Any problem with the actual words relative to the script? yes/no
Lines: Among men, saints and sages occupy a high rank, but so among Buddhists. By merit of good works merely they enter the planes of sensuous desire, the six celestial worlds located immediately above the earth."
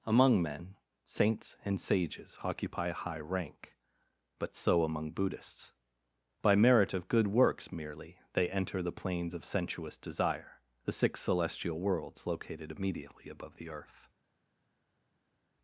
no